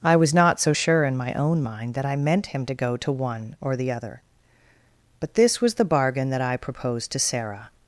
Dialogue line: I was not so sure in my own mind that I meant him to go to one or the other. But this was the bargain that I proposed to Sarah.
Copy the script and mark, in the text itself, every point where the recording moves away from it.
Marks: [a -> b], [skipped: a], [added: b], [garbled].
I was not so sure in my own mind that I meant him to go to one or the other. But this was the bargain that I proposed to Sarah.